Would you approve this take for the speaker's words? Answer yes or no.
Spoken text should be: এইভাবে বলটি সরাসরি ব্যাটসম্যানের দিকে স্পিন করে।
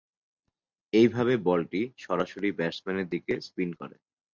yes